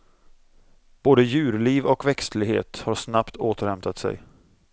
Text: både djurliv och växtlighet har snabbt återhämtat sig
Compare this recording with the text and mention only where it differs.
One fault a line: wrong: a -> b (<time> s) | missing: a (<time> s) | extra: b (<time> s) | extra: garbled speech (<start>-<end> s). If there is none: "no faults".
no faults